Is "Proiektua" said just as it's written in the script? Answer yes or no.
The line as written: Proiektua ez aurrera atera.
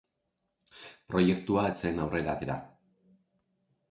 yes